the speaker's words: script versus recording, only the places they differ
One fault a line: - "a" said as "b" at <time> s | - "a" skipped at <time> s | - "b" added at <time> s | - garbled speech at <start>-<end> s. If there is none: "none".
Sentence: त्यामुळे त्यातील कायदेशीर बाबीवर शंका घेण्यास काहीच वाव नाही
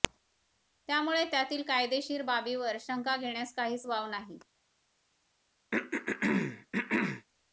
none